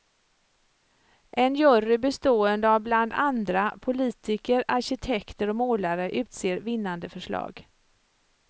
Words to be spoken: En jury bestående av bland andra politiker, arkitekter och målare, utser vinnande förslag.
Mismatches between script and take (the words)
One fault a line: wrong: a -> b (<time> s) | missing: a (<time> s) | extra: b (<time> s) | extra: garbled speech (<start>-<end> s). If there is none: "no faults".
no faults